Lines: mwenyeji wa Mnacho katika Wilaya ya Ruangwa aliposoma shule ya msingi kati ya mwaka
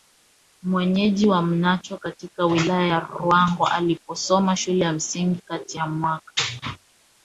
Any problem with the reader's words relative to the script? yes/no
no